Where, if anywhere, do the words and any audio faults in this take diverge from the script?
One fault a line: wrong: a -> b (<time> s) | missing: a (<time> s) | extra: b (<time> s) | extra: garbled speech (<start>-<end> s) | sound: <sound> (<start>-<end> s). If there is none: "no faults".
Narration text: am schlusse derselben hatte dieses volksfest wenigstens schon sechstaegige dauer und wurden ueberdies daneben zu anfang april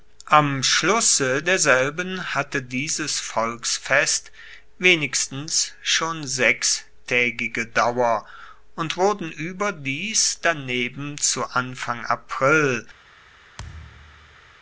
sound: thud (13.6-14.5 s)